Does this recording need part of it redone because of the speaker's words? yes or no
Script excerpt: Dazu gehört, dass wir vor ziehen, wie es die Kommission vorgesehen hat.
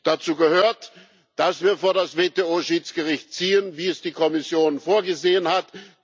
yes